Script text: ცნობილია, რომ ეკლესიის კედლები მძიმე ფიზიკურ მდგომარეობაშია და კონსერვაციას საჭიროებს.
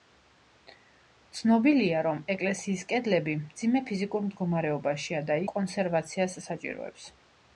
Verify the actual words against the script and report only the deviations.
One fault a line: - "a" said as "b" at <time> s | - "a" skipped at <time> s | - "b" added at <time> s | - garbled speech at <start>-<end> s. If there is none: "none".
none